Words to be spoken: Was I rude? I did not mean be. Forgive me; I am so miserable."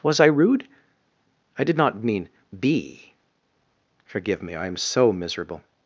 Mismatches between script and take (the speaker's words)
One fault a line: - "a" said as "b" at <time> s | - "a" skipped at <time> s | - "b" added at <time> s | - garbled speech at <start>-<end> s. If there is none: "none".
none